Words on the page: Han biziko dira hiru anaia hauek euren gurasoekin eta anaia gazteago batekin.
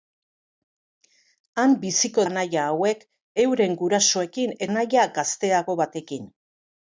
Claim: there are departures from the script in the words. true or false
true